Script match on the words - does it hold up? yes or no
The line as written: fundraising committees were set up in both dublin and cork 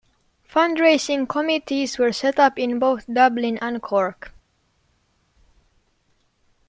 yes